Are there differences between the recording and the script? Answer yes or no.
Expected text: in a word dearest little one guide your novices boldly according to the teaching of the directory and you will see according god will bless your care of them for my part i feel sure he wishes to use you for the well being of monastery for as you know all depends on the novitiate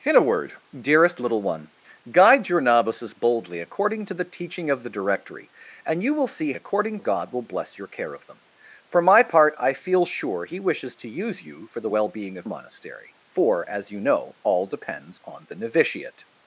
no